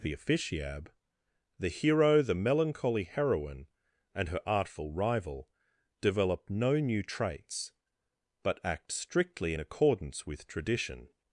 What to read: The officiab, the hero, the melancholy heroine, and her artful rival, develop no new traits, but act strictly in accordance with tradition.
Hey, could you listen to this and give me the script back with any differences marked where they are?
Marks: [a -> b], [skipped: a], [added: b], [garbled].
The officiab, the hero, the melancholy heroine, and her artful rival, develop no new traits, but act strictly in accordance with tradition.